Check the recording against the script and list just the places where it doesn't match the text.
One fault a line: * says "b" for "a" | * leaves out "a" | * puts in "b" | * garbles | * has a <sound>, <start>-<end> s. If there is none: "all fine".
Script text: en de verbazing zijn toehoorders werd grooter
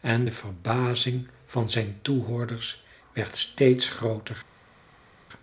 * puts in "van"
* puts in "steeds"